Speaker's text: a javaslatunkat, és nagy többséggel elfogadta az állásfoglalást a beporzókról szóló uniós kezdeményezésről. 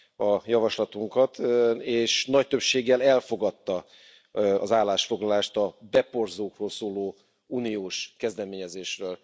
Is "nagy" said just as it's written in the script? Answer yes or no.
yes